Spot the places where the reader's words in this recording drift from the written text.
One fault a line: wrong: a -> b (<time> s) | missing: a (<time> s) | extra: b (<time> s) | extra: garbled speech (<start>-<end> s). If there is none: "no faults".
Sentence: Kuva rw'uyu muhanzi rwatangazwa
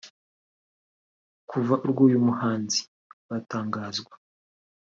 no faults